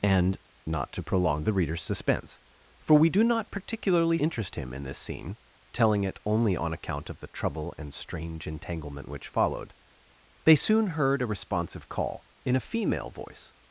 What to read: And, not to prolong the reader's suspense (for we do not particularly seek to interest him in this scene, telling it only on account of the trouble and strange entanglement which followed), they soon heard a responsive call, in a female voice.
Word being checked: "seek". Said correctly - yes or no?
no